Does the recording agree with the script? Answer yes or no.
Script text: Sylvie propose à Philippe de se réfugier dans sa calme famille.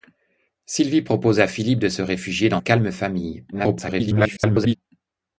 no